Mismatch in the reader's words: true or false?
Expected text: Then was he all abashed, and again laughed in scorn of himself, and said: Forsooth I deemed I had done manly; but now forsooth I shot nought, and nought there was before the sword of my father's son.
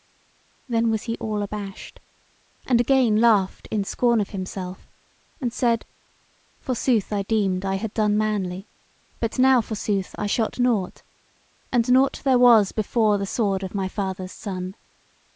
false